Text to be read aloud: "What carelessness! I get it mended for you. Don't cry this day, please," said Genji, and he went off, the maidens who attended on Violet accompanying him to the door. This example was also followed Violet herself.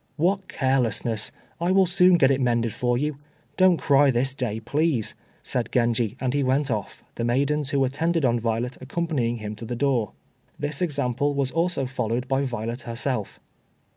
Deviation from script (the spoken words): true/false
true